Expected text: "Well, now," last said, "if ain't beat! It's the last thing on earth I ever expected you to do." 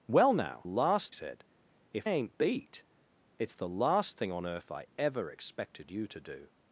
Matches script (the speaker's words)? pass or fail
pass